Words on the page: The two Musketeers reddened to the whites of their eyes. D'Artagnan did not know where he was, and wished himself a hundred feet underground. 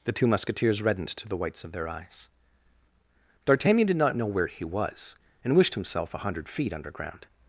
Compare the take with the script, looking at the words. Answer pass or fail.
pass